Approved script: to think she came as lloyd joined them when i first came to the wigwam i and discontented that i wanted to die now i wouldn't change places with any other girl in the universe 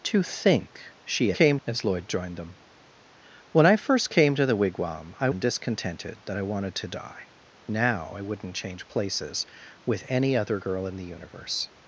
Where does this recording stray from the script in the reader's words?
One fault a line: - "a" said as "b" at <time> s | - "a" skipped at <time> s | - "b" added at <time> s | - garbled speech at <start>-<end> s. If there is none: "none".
none